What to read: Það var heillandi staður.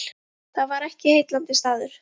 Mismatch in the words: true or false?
true